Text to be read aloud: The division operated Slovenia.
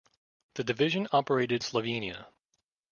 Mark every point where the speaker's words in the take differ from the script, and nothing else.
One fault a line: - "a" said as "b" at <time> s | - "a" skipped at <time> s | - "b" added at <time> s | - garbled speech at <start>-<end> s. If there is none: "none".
none